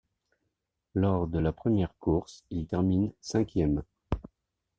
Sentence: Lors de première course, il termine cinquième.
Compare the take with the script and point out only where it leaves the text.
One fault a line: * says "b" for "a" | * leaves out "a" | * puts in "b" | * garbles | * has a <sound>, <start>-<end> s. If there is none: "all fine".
* puts in "la"